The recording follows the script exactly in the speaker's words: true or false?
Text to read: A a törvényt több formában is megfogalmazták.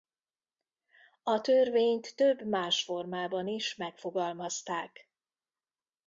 false